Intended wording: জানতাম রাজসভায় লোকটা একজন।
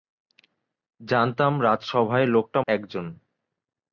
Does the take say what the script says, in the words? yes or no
yes